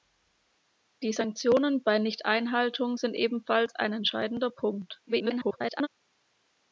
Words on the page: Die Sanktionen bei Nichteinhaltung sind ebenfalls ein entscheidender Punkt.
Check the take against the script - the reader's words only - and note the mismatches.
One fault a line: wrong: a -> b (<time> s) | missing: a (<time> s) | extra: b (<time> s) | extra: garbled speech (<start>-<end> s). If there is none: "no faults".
extra: garbled speech (5.1-5.9 s)